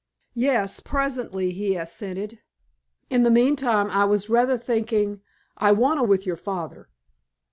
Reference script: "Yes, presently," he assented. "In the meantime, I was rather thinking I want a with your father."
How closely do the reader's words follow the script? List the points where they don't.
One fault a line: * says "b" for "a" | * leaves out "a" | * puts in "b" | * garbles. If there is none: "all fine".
all fine